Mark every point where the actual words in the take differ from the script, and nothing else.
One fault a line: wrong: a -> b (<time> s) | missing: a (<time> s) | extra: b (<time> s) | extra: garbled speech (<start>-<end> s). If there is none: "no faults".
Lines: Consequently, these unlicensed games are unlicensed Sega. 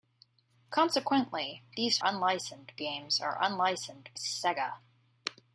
no faults